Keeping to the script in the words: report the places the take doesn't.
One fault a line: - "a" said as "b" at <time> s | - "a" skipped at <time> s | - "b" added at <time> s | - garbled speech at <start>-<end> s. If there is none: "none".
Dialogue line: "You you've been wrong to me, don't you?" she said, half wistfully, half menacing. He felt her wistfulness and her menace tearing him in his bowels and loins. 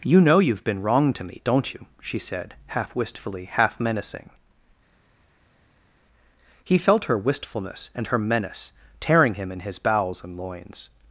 - "know" added at 0.2 s